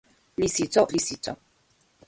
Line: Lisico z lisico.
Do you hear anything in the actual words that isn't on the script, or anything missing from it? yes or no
no